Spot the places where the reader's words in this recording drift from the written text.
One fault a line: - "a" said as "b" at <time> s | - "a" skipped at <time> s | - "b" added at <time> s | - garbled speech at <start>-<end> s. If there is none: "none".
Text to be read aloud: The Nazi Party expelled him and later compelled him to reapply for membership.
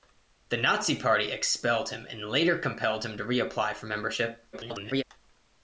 - garbled speech at 4.5-5.0 s